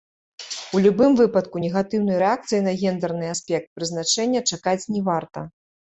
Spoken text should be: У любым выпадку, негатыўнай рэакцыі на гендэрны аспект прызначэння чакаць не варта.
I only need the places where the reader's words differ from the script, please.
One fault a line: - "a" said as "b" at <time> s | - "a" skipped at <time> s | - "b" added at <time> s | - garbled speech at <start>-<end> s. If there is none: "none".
none